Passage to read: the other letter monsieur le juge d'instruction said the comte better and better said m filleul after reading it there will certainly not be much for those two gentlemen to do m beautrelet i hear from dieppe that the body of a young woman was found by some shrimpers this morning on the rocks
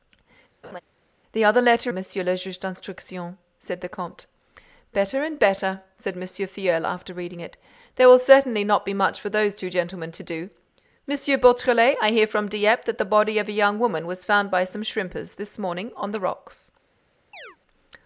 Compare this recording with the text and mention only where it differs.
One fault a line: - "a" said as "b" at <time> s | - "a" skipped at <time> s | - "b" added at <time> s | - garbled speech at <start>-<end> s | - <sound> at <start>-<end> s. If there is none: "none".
- laugh at 0.6-0.8 s
- chirp at 17.3-17.6 s